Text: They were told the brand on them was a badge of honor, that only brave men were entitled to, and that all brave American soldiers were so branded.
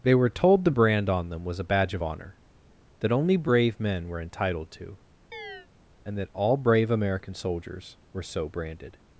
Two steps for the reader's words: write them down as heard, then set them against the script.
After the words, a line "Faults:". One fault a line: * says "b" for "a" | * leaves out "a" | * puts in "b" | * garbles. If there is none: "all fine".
They were told the brand on them was a badge of honor, that only brave men were entitled to, and that all brave American soldiers were so branded.
Faults:
all fine